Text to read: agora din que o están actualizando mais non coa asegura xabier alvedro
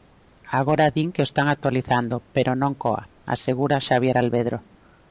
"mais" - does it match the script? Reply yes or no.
no